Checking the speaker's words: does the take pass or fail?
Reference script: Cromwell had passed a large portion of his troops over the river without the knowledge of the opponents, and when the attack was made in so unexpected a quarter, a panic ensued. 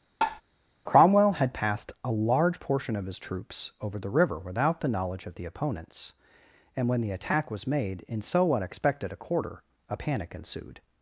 pass